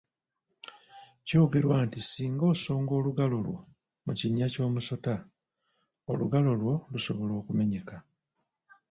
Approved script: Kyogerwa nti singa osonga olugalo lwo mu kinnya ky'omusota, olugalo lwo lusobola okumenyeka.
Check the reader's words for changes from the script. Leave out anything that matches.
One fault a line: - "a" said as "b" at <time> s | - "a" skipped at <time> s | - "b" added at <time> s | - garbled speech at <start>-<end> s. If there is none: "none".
none